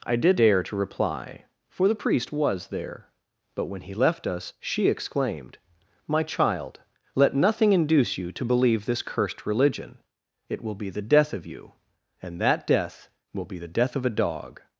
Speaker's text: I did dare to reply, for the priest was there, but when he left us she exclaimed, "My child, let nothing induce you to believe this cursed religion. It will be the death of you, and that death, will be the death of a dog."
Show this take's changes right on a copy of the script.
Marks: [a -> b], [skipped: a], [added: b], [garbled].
I did dare to reply, for the priest was there, but when he left us she exclaimed, "My child, let nothing induce you to believe this cursed religion. It will be the death of you, and that death, will be the death of a dog."